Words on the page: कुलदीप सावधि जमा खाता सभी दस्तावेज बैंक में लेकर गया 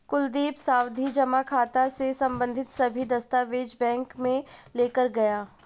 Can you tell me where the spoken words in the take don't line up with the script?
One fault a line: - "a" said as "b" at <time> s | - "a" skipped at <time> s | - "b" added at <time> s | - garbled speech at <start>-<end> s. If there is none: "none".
- "से संबंधित" added at 1.9 s